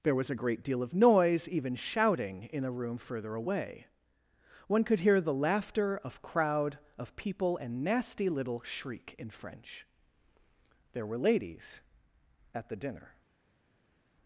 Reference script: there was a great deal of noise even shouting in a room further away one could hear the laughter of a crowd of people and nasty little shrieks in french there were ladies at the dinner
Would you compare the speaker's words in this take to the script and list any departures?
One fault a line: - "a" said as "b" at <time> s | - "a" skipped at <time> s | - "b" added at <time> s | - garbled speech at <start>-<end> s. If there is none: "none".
- "a" skipped at 6.2 s
- "shrieks" said as "shriek" at 8.6 s